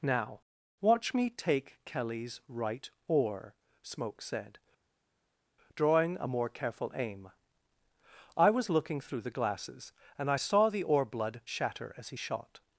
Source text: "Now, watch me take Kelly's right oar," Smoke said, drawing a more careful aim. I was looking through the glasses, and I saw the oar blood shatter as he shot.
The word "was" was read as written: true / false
true